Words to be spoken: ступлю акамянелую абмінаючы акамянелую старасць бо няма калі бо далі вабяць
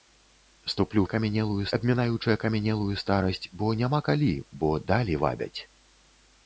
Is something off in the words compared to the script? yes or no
no